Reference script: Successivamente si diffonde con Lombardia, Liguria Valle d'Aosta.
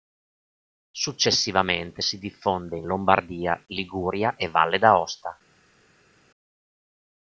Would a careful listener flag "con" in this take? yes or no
yes